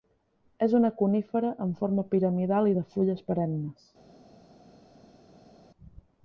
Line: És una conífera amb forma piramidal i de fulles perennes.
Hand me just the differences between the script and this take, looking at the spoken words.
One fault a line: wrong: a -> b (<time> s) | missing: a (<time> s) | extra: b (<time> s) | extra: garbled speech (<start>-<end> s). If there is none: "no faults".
no faults